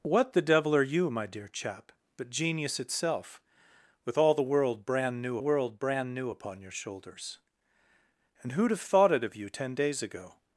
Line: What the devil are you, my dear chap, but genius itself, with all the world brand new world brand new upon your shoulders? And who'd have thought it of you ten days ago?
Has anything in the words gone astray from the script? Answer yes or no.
no